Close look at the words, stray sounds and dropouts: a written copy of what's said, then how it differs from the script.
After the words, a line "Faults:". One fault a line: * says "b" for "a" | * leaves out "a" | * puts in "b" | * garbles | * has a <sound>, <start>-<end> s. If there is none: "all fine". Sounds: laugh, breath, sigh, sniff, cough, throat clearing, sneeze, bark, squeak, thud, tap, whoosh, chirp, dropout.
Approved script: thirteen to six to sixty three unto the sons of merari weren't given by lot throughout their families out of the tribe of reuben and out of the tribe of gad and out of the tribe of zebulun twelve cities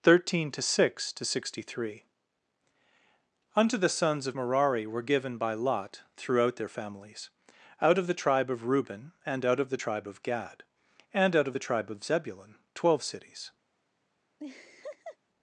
thirteen to six to sixty three unto the sons of merari were given by lot throughout their families out of the tribe of reuben and out of the tribe of gad and out of the tribe of zebulun twelve cities
Faults:
* says "were" for "weren't"
* has a laugh, 14.4-15.2 s